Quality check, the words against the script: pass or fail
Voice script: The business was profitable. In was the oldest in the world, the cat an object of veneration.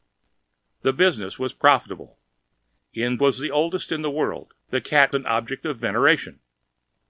pass